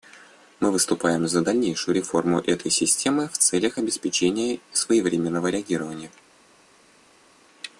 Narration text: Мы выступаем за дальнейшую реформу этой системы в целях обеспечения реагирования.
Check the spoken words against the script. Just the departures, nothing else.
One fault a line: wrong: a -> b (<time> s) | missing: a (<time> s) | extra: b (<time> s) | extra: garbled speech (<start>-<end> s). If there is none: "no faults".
extra: своевременного (4.7 s)